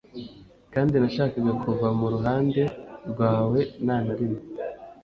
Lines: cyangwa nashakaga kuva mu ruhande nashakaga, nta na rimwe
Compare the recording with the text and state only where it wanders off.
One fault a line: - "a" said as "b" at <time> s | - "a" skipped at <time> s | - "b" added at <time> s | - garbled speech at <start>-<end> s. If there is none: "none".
- "cyangwa" said as "kandi" at 0.7 s
- "nashakaga" said as "rwawe" at 3.1 s